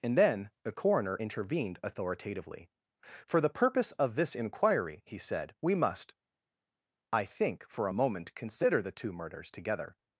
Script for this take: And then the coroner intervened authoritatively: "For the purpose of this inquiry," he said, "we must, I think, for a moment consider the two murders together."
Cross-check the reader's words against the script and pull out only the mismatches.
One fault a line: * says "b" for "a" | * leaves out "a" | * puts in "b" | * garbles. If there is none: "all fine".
all fine